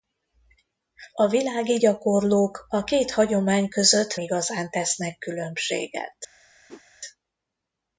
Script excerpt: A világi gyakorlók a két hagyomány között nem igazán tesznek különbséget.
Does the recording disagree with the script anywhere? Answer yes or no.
yes